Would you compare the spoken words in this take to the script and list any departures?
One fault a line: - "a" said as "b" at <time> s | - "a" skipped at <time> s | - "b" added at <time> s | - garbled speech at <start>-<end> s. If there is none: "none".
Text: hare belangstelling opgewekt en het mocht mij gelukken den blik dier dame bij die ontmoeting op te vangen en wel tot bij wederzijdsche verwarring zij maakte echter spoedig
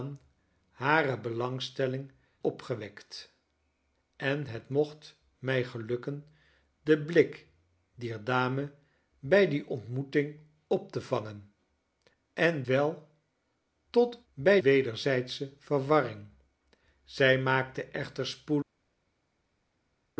none